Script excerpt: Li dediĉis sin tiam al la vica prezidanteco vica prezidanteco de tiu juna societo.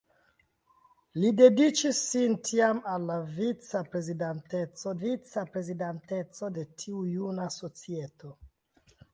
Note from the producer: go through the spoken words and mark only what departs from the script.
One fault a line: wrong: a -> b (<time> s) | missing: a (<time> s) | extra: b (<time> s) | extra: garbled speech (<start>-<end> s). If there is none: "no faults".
no faults